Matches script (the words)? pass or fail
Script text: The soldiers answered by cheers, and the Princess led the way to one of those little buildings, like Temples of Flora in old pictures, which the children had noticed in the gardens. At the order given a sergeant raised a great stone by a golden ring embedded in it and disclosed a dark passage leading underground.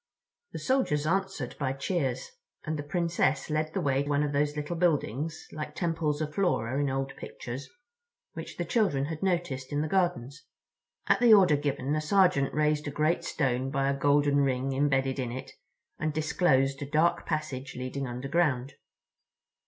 fail